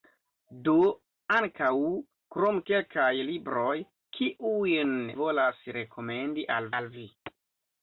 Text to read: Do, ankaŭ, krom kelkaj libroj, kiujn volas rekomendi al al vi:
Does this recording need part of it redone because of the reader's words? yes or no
no